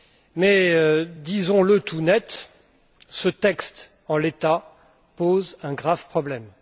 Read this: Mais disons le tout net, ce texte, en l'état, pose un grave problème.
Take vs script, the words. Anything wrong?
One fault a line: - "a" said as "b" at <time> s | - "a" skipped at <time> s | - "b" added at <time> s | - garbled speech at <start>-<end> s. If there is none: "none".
none